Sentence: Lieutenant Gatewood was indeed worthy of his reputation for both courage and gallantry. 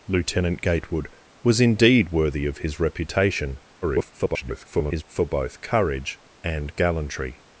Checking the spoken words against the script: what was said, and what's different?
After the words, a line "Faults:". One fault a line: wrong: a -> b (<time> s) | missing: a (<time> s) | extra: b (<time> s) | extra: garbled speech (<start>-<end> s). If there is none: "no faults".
Lieutenant Gatewood was indeed worthy of his reputation [garbled] for both courage and gallantry.
Faults:
extra: garbled speech (3.8-5.0 s)